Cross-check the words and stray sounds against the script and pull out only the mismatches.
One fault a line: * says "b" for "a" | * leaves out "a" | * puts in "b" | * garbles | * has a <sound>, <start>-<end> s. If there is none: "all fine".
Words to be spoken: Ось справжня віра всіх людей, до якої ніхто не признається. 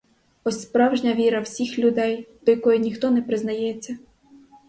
all fine